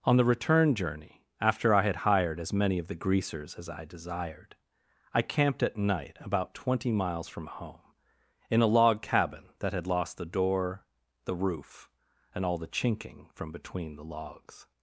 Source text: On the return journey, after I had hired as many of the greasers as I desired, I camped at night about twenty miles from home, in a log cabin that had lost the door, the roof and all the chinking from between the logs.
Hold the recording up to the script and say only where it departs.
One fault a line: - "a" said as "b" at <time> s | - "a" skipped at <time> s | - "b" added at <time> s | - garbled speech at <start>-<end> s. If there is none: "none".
none